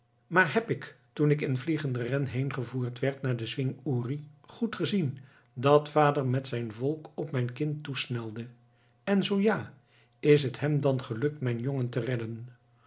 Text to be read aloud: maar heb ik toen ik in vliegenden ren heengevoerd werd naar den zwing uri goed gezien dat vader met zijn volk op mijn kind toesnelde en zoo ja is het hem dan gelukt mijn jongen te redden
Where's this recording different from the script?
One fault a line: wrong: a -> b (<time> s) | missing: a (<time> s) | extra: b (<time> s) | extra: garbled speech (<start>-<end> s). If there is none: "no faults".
no faults